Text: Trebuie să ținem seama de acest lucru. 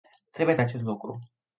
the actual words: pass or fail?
fail